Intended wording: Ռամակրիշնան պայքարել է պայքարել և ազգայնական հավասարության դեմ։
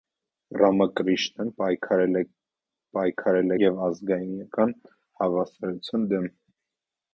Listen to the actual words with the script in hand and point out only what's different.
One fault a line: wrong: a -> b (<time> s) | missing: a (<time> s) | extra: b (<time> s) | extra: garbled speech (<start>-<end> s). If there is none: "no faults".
no faults